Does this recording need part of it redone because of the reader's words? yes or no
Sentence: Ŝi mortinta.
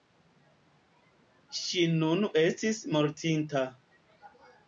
yes